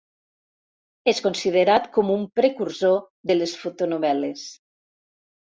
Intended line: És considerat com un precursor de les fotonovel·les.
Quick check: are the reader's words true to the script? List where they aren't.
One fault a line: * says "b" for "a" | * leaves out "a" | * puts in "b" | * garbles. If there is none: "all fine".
all fine